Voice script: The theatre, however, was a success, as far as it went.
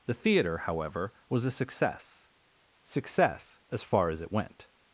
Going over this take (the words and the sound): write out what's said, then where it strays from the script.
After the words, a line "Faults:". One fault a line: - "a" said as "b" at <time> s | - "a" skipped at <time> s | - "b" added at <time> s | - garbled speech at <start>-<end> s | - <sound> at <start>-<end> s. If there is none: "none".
The theatre, however, was a success success, as far as it went.
Faults:
- "success" added at 2.8 s